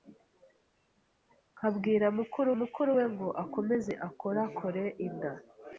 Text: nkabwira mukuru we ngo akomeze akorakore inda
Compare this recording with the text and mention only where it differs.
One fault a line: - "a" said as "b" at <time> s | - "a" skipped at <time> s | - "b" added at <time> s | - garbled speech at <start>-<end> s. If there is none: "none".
- "mukuru" added at 2.6 s